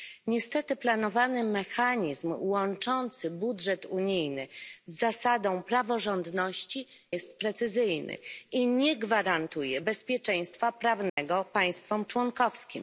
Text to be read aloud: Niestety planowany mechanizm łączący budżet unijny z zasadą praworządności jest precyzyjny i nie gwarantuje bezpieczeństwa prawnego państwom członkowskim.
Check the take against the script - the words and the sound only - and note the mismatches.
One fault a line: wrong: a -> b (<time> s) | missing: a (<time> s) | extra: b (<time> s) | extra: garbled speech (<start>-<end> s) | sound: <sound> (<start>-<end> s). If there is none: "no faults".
sound: dropout (11.1-11.2 s)